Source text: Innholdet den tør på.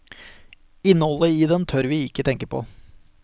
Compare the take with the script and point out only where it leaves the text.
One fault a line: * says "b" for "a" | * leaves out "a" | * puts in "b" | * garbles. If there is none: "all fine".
* puts in "i"
* puts in "vi ikke tenke"